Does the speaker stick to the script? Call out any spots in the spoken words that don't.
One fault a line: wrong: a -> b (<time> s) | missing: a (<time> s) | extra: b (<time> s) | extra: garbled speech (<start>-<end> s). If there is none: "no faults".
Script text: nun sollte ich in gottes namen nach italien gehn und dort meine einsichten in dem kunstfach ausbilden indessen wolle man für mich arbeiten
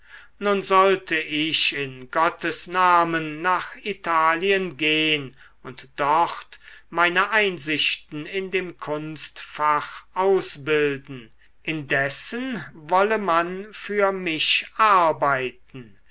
no faults